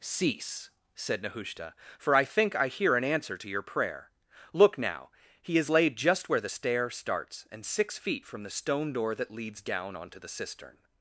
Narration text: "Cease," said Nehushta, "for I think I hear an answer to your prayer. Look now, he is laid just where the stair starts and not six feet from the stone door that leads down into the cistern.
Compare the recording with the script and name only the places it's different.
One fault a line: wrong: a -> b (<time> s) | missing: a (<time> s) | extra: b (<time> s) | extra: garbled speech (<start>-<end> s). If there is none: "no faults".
missing: not (7.6 s)
wrong: into -> onto (10.0 s)